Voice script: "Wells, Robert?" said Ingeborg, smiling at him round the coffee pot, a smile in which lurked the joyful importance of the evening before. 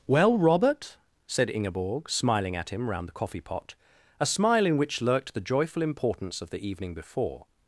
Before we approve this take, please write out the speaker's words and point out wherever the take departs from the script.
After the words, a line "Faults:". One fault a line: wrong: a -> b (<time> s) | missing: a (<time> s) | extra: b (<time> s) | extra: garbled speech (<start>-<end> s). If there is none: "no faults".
"Well, Robert?" said Ingeborg, smiling at him round the coffee pot, a smile in which lurked the joyful importance of the evening before.
Faults:
wrong: Wells -> Well (0.1 s)